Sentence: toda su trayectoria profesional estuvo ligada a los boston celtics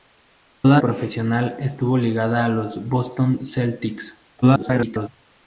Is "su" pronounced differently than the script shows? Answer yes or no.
yes